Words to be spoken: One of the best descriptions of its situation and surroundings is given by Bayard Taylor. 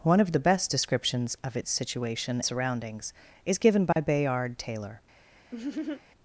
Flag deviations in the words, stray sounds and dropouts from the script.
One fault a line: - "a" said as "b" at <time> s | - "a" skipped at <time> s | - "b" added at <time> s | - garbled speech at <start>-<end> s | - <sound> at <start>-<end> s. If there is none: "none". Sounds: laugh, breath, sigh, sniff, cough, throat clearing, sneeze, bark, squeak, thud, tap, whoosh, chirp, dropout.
- "and" skipped at 2.4 s
- dropout at 3.9-4.0 s
- laugh at 5.5-6.0 s